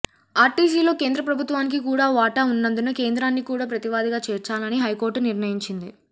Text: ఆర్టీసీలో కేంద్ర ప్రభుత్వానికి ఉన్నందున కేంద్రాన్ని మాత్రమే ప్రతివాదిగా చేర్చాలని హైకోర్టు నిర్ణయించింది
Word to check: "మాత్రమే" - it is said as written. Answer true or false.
false